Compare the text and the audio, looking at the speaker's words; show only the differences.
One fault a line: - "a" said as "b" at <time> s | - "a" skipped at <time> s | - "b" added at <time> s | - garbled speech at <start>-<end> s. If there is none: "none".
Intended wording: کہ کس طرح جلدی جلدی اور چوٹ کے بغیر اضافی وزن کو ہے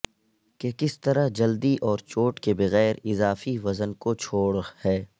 - "جلدی" skipped at 1.8 s
- "چھوڑ" added at 4.2 s